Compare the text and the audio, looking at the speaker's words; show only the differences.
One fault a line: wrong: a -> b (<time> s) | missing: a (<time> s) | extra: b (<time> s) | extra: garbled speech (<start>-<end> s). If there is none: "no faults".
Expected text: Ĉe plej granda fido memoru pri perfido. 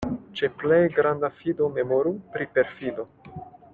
no faults